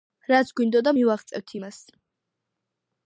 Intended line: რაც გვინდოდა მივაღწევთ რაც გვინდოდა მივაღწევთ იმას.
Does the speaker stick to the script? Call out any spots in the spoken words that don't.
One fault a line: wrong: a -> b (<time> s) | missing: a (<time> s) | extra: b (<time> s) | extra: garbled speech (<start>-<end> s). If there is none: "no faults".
missing: რაც გვინდოდა მივაღწევთ (1.5 s)